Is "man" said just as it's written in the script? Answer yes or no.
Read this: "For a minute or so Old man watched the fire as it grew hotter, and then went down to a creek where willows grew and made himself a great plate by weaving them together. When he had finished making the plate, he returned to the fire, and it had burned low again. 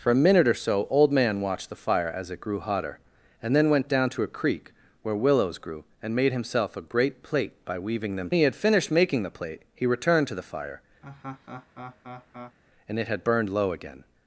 yes